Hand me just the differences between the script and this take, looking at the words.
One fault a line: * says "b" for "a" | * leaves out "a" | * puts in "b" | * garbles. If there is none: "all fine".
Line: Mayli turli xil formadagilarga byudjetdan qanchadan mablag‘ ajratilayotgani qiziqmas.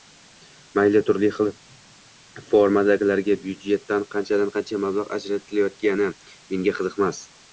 * puts in "qancha"
* puts in "menga"